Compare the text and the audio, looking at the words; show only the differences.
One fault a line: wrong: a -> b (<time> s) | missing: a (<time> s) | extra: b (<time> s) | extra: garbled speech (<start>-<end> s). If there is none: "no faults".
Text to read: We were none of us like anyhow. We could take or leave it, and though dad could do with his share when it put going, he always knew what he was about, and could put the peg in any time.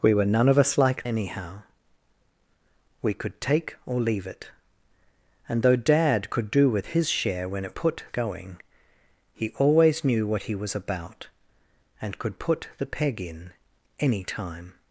no faults